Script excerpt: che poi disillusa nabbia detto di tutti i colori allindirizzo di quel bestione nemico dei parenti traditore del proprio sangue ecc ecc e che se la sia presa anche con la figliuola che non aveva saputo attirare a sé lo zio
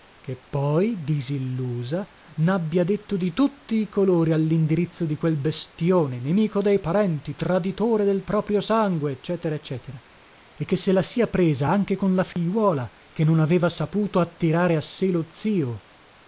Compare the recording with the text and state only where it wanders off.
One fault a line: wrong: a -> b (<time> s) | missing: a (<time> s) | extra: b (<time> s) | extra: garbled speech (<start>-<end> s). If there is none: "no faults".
no faults